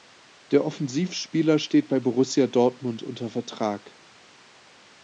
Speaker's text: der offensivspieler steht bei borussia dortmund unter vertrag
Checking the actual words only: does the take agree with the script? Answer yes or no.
yes